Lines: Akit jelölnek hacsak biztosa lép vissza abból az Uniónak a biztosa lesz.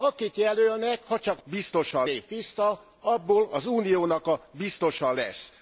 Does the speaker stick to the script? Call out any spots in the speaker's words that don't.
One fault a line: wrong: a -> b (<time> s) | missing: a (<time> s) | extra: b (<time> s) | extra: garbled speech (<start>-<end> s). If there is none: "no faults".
no faults